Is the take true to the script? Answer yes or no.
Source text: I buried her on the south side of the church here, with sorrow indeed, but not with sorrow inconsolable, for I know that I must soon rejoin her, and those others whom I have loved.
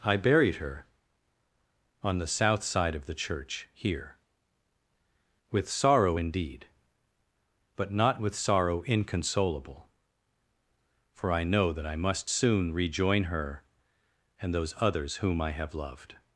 yes